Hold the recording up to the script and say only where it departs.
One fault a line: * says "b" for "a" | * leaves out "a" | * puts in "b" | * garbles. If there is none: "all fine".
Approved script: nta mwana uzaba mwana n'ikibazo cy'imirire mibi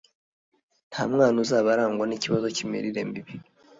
* says "arangwa" for "mwana"